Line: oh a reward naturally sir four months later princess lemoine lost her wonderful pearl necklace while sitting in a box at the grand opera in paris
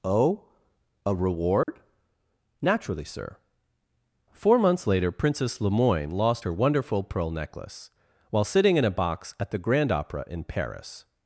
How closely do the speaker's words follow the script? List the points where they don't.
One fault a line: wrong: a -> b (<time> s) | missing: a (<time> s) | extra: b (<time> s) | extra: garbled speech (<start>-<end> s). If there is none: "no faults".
no faults